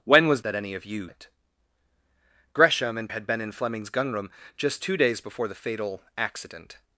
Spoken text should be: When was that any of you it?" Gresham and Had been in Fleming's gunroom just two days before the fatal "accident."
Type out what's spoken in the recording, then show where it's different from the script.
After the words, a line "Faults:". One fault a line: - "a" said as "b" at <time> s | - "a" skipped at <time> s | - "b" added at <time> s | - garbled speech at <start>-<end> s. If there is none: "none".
When was that any of you it?" Gresham and Had been in Fleming's gunroom just two days before the fatal "accident."
Faults:
none